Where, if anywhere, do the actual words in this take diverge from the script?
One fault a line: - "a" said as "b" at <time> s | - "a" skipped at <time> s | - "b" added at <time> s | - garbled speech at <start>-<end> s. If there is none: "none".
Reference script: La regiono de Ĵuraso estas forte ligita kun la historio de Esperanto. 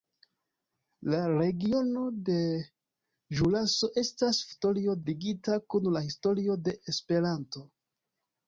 - "forte" said as "historio" at 4.5 s